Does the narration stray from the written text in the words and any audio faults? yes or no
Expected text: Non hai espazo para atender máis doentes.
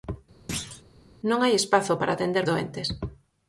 yes